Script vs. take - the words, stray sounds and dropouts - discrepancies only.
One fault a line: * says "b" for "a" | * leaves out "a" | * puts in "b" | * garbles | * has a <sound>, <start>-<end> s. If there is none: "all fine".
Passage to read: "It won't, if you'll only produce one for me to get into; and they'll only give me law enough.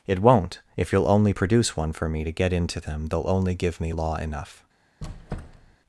* says "them" for "and"
* has a squeak, 5.0-5.8 s